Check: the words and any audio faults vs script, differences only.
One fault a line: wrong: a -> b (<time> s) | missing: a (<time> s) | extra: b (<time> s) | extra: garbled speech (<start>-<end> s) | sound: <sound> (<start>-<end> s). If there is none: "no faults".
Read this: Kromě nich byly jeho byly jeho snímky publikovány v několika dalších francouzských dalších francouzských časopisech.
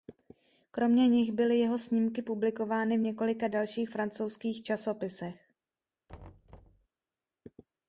missing: byly jeho (1.8 s)
missing: dalších francouzských (4.6 s)
sound: thud (6.1-6.9 s)